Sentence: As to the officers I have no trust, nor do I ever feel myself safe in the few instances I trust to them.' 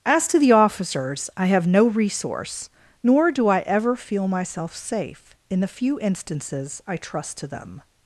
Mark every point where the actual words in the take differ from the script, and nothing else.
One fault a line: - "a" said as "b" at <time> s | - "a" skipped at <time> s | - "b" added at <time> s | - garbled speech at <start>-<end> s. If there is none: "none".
- "trust" said as "resource" at 1.9 s